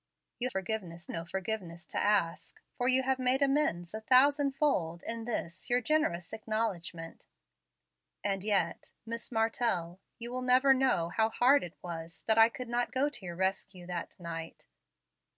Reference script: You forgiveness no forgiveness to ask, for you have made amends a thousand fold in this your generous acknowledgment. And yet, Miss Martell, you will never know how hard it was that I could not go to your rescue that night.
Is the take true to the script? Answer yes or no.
yes